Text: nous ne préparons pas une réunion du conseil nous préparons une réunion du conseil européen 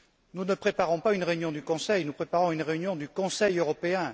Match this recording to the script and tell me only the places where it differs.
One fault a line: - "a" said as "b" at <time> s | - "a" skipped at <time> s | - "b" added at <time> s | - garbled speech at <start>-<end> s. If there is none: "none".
none